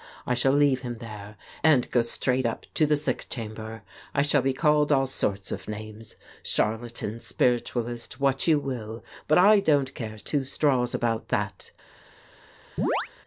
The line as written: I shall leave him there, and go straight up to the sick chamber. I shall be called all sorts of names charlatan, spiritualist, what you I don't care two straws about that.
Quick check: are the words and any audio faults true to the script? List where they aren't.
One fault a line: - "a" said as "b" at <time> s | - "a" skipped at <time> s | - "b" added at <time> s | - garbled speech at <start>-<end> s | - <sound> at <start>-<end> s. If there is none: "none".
- "will but" added at 8.6 s
- chirp at 12.8-13.1 s